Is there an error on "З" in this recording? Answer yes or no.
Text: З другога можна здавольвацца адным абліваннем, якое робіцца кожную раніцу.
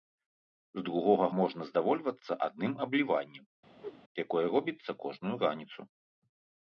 no